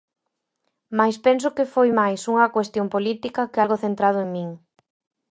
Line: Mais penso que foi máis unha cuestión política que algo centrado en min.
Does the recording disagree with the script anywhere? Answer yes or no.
no